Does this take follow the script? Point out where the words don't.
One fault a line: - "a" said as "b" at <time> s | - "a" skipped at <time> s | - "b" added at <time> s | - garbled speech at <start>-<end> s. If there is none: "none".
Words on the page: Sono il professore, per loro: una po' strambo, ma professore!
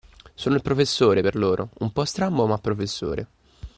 - "una" said as "un" at 1.8 s